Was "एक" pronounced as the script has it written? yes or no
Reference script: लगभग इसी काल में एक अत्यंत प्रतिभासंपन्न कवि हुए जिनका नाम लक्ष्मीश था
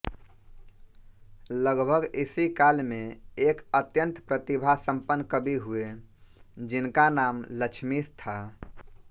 yes